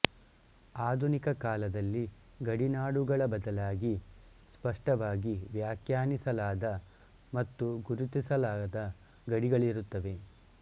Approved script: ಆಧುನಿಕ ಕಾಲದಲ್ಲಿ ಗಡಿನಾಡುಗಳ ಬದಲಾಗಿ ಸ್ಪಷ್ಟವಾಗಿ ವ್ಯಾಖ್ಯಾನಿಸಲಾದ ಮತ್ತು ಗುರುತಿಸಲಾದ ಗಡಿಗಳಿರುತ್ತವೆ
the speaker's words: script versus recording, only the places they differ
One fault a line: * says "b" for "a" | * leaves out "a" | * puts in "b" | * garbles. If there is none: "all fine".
all fine